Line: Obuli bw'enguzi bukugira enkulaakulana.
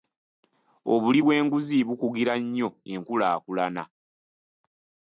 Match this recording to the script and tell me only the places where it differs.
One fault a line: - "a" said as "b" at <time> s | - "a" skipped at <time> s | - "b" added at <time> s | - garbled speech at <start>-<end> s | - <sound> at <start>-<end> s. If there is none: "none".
- "nnyo" added at 2.4 s